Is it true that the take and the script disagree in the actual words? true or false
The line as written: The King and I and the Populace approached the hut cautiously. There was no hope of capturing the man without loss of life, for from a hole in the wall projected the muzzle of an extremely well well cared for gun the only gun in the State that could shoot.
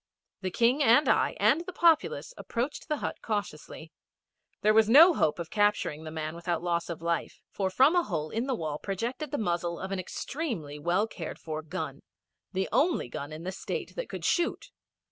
true